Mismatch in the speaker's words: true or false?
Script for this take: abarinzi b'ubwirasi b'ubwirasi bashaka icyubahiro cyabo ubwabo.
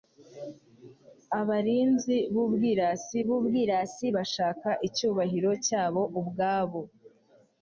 false